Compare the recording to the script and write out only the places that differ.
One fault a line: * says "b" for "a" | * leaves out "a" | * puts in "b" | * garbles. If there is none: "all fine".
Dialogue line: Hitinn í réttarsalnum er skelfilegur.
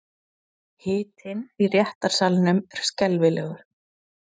all fine